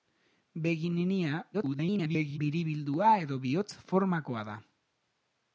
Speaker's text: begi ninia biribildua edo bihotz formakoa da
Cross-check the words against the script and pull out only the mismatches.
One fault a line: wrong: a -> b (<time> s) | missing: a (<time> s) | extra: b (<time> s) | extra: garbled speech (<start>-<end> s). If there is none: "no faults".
extra: garbled speech (1.5-2.4 s)